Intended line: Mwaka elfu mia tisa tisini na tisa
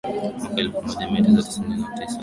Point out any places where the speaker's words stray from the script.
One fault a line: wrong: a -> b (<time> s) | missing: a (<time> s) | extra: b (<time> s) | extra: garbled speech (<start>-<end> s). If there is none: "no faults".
extra: moja (0.8 s)